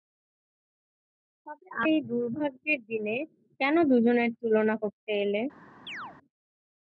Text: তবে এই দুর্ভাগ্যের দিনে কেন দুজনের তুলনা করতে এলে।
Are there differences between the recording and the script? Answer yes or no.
no